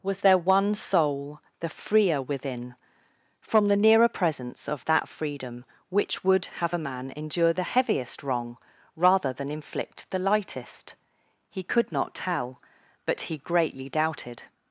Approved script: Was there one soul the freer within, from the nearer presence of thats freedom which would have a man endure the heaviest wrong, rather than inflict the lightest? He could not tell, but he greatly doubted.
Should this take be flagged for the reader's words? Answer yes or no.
yes